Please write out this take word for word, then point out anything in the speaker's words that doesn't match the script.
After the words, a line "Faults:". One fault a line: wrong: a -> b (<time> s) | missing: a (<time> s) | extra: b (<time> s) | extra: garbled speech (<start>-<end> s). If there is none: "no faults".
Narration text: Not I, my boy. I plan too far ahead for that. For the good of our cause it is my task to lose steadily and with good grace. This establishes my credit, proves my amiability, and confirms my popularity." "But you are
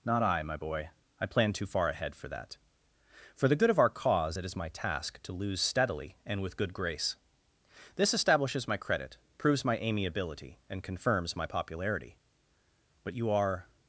Not I, my boy. I plan too far ahead for that. For the good of our cause it is my task to lose steadily and with good grace. This establishes my credit, proves my amiability, and confirms my popularity." "But you are
Faults:
no faults